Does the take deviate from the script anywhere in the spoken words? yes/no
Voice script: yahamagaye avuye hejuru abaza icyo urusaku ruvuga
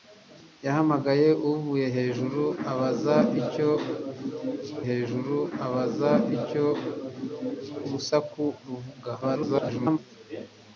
yes